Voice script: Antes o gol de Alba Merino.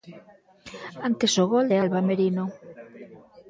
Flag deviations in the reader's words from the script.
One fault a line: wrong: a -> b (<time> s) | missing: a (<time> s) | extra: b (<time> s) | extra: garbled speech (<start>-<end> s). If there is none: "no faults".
no faults